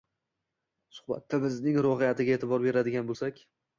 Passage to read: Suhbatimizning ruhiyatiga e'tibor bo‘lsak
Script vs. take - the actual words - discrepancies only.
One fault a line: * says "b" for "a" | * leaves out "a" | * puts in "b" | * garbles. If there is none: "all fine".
* puts in "beradigan"